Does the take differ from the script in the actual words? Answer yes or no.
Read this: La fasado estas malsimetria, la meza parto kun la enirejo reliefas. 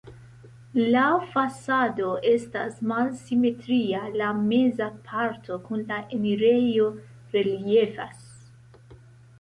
no